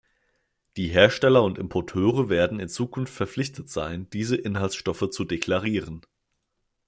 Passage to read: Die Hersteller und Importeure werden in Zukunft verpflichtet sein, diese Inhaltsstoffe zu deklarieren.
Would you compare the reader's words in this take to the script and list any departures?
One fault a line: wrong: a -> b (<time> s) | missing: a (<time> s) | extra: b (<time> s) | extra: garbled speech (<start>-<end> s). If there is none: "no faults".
no faults